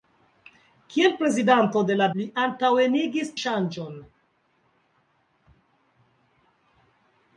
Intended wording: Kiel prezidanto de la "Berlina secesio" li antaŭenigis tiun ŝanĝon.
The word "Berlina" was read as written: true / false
false